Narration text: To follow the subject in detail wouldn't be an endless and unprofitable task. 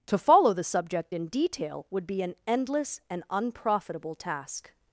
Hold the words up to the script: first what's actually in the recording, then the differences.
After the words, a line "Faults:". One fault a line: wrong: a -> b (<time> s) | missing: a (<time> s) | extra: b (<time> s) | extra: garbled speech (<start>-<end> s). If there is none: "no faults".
To follow the subject in detail would be an endless and unprofitable task.
Faults:
wrong: wouldn't -> would (1.9 s)